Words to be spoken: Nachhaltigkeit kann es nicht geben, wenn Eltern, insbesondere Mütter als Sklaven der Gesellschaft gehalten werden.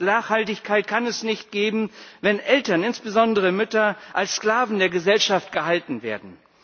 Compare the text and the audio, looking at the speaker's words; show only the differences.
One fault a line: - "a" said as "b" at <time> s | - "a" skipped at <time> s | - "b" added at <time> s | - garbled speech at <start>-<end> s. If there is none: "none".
none